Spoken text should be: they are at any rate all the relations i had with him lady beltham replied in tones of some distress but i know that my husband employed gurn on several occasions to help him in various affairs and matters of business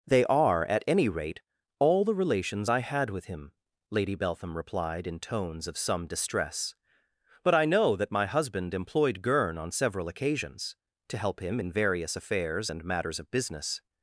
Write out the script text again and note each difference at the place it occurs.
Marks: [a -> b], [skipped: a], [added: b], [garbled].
they are at any rate all the relations i had with him lady beltham replied in tones of some distress but i know that my husband employed gurn on several occasions to help him in various affairs and matters of business